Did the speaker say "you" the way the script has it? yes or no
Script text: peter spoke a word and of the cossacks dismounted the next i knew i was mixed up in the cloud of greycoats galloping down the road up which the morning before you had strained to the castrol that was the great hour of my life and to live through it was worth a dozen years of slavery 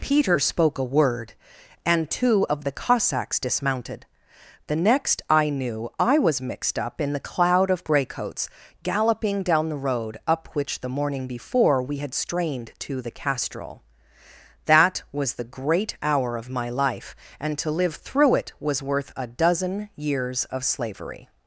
no